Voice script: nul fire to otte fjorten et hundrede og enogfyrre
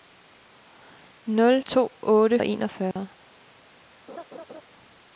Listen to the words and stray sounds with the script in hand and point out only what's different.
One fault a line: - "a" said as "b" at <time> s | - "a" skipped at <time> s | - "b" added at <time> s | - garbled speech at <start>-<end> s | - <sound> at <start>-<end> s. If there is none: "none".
- "fire" skipped at 1.6 s
- "fjorten et hundrede" skipped at 2.4 s
- dropout at 2.9-3.0 s
- laugh at 4.1-4.6 s